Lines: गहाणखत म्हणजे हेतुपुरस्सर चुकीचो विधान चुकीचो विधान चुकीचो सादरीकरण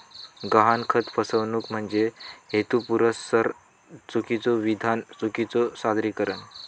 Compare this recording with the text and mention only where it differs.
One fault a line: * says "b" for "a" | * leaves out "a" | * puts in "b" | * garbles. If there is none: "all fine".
* puts in "फसवणूक"
* leaves out "विधान चुकीचो"